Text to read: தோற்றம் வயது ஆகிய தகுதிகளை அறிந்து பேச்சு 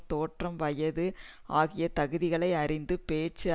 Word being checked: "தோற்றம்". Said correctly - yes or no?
yes